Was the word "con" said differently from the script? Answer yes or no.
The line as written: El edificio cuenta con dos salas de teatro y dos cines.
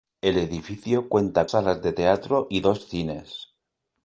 yes